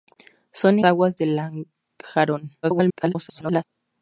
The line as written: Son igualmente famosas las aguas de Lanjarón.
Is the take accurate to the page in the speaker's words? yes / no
no